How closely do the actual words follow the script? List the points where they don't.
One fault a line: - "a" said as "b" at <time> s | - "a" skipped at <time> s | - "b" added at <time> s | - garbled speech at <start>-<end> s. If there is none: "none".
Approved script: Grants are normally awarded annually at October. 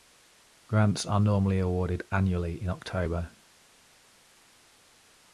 - "at" said as "in" at 2.6 s